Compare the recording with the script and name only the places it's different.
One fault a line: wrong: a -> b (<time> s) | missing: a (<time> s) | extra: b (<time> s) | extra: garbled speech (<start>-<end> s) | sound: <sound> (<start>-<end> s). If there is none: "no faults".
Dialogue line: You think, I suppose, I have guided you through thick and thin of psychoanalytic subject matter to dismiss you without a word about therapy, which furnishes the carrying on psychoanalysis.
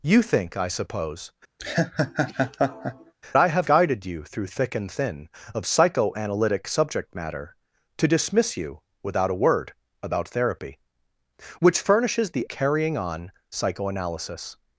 sound: laugh (1.6-3.1 s)